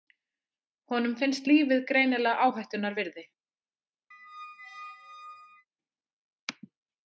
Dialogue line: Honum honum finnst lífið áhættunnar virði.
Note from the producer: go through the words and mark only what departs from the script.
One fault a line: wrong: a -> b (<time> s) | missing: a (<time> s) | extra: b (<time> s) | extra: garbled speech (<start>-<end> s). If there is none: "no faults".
missing: honum (1.1 s)
extra: greinilega (1.9 s)